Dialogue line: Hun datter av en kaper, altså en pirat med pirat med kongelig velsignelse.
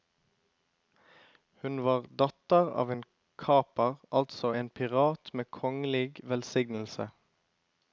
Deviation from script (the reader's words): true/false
true